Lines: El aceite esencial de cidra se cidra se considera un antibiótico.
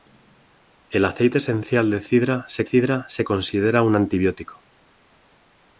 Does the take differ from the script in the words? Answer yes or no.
no